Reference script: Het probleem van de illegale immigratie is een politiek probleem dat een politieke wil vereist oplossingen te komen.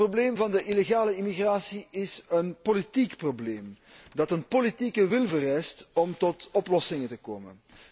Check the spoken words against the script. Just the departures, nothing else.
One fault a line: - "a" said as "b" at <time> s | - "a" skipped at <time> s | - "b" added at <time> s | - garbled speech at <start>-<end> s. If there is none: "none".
- "om tot" added at 5.9 s